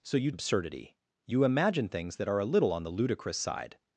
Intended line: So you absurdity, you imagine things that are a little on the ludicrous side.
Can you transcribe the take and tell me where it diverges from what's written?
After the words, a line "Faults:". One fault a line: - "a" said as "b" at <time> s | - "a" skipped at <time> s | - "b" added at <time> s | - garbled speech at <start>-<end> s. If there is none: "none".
So you absurdity, you imagine things that are a little on the ludicrous side.
Faults:
none